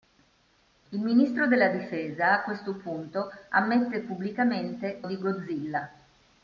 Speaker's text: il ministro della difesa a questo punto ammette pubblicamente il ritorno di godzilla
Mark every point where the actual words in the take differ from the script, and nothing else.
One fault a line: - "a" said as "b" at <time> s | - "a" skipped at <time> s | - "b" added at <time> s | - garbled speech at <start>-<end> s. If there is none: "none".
- "il ritorno" skipped at 5.0 s